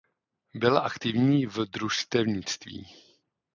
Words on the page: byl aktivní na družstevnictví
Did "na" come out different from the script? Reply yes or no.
yes